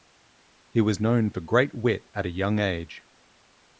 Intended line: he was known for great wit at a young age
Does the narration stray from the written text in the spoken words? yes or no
no